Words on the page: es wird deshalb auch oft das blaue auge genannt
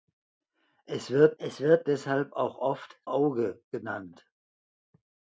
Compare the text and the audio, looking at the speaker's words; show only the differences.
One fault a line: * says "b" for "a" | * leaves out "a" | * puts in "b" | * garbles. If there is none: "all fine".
* puts in "es wird"
* leaves out "das blaue"